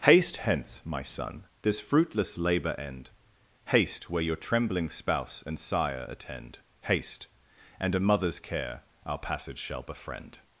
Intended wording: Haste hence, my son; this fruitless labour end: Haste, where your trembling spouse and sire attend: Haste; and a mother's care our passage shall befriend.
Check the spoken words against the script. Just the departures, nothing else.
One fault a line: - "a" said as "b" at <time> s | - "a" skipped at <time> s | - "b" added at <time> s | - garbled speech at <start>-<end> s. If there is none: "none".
none